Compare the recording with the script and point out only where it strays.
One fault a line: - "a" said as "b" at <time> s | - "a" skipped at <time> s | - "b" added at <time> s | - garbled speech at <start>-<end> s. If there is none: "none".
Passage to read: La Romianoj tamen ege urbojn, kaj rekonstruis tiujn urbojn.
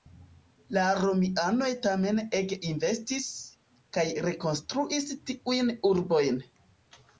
- "urbojn" said as "investis" at 2.7 s